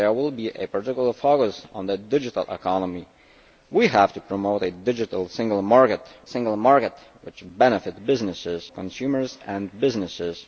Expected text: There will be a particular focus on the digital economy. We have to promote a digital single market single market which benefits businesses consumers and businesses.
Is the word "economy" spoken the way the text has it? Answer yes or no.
yes